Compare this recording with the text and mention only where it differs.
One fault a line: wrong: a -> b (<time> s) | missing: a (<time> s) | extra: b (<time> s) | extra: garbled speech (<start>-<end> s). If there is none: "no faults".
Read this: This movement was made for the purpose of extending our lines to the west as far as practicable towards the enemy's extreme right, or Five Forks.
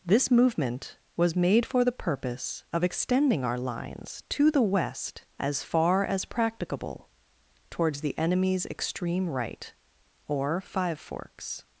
no faults